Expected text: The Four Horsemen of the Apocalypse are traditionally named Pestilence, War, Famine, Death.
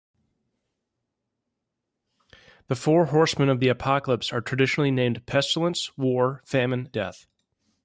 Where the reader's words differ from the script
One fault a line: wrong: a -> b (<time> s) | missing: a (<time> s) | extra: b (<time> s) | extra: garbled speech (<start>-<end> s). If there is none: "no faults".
no faults